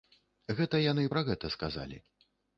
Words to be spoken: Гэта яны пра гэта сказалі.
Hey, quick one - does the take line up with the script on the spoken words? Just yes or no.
yes